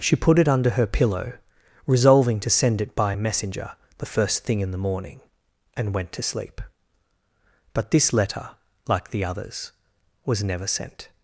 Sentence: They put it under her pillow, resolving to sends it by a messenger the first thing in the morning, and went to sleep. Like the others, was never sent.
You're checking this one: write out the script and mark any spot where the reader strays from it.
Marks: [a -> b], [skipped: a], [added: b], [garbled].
[They -> She] put it under her pillow, resolving to [sends -> send] it by a messenger the first thing in the morning, and went to sleep. [added: But this letter] Like the others, was never sent.